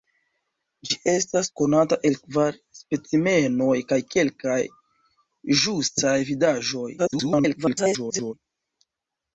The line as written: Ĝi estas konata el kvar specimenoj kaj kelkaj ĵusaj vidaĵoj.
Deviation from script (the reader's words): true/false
true